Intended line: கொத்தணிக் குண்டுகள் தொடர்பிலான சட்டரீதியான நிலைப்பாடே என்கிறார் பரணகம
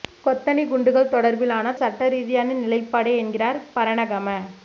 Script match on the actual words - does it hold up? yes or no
yes